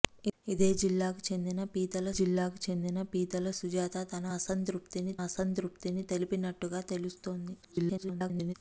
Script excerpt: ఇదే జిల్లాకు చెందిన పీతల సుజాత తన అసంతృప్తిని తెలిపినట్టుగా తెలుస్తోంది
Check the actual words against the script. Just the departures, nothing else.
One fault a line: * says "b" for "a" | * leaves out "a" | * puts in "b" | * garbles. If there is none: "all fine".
* puts in "జిల్లాకు చెందిన పీతల"
* puts in "అసంతృప్తిని"
* garbles